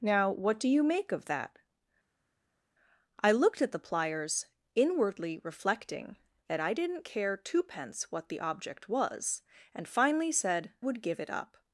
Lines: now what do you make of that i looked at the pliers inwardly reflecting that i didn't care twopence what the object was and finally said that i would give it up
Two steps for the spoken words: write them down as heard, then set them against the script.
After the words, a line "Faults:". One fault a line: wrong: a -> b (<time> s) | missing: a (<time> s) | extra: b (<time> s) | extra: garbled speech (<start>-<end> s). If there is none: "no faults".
now what do you make of that i looked at the pliers inwardly reflecting that i didn't care twopence what the object was and finally said would give it up
Faults:
missing: that i (10.7 s)